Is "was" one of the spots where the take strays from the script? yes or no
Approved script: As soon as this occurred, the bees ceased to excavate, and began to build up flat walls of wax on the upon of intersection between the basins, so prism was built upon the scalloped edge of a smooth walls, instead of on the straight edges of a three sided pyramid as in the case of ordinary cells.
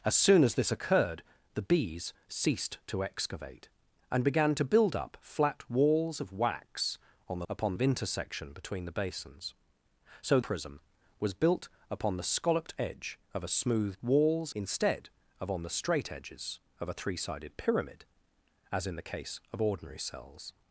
no